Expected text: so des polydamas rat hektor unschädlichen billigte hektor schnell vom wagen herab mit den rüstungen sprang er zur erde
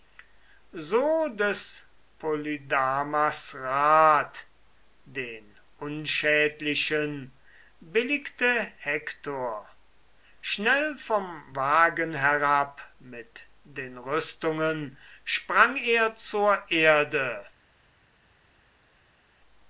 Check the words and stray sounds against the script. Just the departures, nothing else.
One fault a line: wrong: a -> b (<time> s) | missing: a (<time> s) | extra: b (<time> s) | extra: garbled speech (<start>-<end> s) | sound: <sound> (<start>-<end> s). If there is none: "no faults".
wrong: hektor -> den (5.0 s)